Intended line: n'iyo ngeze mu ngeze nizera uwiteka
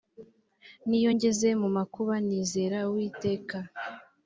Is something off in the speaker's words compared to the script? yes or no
yes